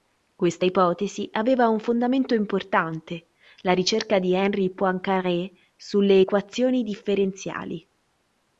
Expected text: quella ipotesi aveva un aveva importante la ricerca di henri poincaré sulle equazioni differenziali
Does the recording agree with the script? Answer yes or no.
no